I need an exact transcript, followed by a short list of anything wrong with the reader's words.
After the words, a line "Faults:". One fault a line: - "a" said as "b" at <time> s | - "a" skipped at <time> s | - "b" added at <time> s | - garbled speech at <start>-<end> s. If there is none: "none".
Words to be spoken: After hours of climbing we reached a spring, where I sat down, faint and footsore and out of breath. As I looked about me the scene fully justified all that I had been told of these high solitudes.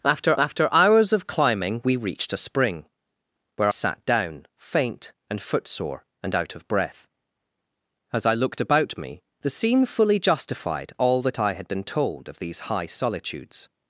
After after hours of climbing we reached a spring, where sat down, faint and footsore and out of breath. As I looked about me the scene fully justified all that I had been told of these high solitudes.
Faults:
- "after" added at 0.4 s
- "I" skipped at 3.7 s